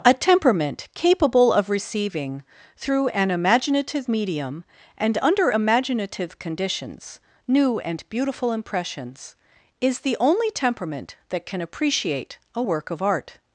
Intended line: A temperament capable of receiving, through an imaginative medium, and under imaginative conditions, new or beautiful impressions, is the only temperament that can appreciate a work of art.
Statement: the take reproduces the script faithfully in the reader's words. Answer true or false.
false